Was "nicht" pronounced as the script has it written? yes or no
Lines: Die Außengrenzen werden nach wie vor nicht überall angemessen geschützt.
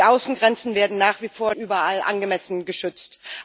no